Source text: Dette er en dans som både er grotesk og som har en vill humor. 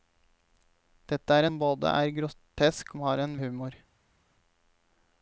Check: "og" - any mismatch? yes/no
yes